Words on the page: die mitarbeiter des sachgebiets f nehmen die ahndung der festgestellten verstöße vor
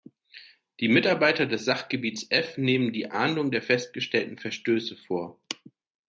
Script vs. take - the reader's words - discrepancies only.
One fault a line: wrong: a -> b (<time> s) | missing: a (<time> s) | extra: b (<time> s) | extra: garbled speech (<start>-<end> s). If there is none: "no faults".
no faults